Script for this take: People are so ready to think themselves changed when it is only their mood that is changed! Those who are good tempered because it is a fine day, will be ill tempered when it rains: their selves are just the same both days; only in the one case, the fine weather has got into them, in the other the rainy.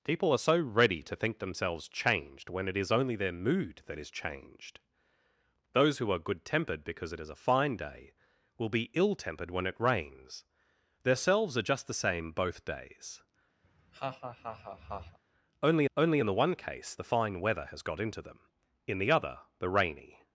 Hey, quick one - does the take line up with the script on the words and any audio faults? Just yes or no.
no